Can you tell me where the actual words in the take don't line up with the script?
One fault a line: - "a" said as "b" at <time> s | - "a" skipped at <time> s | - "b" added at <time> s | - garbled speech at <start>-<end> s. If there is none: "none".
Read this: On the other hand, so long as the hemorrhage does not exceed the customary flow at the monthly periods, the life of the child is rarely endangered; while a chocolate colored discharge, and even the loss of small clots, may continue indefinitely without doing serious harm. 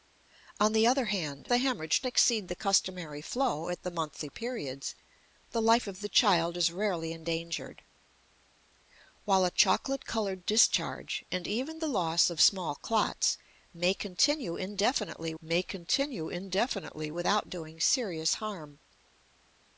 - "so long as" skipped at 1.5 s
- "does not" skipped at 2.0 s
- "may continue indefinitely" added at 15.4 s